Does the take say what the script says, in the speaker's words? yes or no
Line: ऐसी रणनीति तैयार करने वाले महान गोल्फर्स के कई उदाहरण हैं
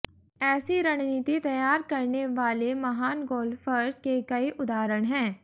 yes